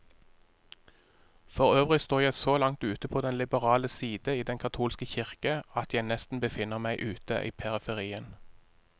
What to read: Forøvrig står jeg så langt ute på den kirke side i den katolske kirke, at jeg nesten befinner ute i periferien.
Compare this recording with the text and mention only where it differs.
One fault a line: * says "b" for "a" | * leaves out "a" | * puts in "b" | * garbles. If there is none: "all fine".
* says "liberale" for "kirke"
* puts in "meg"